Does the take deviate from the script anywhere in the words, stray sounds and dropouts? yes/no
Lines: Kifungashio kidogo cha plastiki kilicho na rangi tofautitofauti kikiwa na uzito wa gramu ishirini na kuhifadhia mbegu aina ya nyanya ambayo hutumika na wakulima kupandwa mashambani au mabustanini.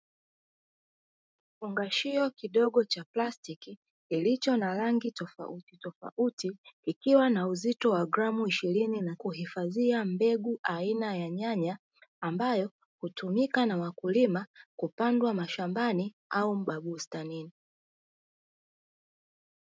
no